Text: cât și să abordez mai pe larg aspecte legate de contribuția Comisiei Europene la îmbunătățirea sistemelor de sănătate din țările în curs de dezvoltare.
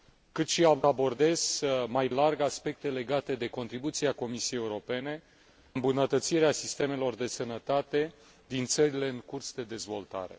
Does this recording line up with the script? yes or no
no